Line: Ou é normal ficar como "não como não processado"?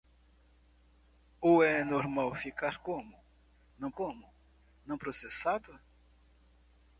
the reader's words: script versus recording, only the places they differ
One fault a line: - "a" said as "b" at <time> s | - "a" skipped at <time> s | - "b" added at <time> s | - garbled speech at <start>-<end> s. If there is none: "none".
none